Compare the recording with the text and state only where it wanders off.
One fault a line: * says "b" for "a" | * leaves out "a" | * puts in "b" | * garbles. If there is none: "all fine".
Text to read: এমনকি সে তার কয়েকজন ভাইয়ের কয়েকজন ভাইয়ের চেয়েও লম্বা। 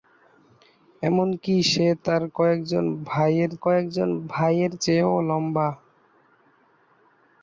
all fine